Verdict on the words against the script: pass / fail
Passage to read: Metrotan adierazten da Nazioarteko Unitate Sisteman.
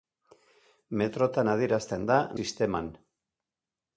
fail